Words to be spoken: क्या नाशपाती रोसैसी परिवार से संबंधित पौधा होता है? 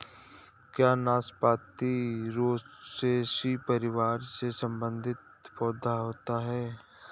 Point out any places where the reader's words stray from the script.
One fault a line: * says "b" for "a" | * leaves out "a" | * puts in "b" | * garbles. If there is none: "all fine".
all fine